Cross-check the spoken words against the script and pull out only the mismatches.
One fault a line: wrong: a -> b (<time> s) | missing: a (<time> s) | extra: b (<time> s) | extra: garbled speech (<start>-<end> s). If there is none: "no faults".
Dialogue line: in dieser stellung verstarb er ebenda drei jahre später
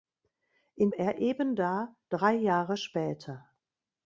missing: dieser stellung verstarb (0.9 s)